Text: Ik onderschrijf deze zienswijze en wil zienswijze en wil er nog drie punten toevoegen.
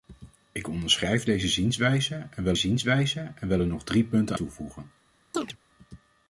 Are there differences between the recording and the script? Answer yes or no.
no